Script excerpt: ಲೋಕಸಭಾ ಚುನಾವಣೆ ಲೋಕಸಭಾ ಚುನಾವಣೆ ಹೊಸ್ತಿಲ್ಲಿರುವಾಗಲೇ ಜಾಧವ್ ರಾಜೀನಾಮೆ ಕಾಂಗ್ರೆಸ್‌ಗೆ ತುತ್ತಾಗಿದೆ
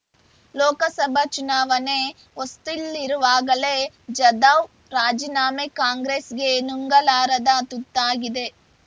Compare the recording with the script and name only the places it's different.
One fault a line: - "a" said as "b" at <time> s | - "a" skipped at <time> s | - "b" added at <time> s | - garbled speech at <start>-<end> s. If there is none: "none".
- "ಲೋಕಸಭಾ ಚುನಾವಣೆ" skipped at 2.0 s
- "ನುಂಗಲಾರದ" added at 6.7 s